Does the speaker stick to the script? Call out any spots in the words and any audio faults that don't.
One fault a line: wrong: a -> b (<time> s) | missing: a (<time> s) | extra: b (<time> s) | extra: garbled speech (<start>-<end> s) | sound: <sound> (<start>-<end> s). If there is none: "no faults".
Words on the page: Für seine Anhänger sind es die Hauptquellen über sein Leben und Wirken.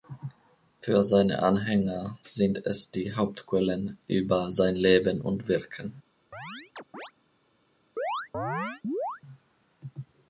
sound: chirp (6.3-7.1 s)
sound: chirp (8.0-9.2 s)